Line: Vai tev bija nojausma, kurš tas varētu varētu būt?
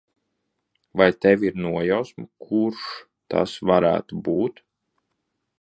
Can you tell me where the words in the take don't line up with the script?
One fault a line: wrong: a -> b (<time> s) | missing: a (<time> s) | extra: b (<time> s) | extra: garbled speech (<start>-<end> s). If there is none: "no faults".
wrong: bija -> ir (1.5 s)
missing: varētu (4.2 s)